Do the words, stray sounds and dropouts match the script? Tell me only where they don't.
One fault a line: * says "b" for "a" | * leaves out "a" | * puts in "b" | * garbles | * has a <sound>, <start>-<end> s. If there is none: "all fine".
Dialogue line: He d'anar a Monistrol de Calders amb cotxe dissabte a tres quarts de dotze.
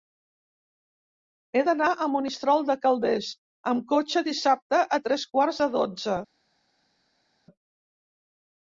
all fine